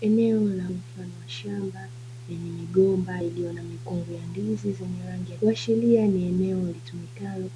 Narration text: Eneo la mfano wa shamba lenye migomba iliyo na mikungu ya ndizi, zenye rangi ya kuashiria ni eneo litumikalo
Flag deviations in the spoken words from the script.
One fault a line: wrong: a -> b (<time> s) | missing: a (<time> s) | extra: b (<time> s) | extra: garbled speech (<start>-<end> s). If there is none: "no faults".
no faults